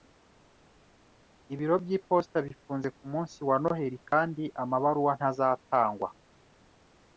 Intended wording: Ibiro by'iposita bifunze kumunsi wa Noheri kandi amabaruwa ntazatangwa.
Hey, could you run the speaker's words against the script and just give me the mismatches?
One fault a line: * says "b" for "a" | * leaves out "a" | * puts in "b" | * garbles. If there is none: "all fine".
all fine